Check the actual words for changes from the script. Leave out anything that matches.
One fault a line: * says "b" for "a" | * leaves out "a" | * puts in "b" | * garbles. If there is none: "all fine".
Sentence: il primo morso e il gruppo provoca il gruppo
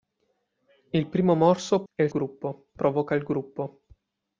all fine